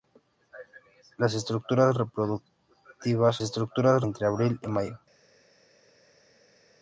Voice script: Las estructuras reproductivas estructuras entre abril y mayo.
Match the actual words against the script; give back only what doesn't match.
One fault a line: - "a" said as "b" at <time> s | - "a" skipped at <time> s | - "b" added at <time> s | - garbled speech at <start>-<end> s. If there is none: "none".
none